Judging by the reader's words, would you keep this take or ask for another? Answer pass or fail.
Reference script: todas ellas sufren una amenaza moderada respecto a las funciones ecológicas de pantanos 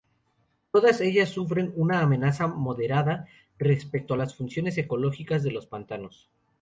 fail